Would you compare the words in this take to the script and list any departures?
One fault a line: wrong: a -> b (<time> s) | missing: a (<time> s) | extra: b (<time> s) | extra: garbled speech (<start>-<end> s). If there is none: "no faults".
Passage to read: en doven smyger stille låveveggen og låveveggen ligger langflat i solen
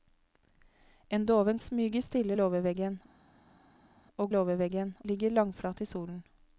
no faults